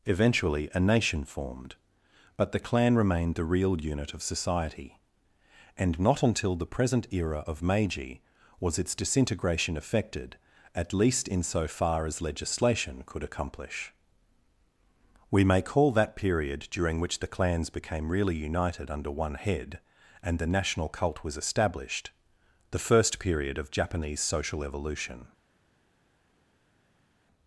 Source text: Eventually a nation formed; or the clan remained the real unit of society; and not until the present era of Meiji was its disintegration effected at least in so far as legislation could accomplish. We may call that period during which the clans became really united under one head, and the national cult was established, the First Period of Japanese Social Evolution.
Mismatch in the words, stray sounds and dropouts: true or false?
true